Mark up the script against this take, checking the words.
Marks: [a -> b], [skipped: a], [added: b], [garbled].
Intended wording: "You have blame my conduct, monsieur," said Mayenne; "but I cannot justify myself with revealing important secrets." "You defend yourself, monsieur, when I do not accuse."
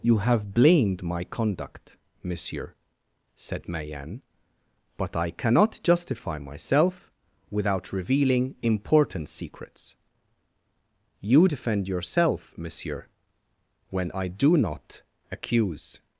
"You have [blame -> blamed] my conduct, monsieur," said Mayenne; "but I cannot justify myself [with -> without] revealing important secrets." "You defend yourself, monsieur, when I do not accuse."